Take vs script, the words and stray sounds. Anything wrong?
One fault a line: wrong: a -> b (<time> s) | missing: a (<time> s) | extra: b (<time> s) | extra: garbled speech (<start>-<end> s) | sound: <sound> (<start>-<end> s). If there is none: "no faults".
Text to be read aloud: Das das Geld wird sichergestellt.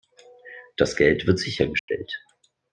missing: das (0.9 s)
sound: dropout (1.8-1.9 s)